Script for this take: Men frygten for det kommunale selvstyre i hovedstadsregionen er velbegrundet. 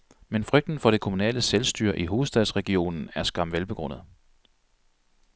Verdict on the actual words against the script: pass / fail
fail